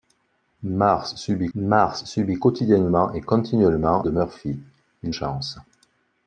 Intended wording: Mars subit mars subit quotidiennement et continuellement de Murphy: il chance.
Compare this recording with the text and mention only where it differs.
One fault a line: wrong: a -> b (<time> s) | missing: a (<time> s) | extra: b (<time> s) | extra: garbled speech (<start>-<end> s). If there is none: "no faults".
no faults